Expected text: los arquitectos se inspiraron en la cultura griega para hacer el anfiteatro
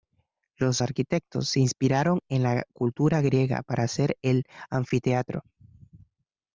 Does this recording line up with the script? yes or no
yes